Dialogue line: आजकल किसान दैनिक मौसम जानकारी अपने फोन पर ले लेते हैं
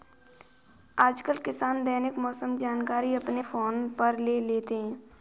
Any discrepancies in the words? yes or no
no